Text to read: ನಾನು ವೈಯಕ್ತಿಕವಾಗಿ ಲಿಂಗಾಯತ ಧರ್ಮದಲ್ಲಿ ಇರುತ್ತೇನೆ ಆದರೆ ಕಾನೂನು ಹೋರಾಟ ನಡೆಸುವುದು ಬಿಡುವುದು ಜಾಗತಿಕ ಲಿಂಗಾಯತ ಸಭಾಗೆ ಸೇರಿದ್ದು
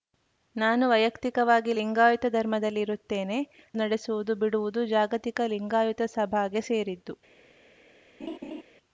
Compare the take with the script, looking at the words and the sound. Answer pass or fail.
fail